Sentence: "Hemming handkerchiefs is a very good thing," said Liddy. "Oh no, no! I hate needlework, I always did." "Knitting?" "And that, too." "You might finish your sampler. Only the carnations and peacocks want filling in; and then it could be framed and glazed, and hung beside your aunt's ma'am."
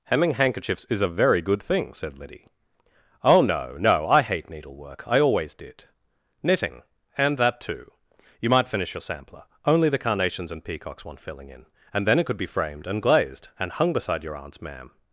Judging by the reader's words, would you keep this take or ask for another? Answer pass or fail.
pass